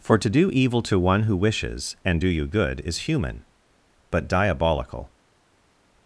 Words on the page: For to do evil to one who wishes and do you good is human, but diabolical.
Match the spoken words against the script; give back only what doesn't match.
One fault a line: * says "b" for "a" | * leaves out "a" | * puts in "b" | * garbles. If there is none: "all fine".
all fine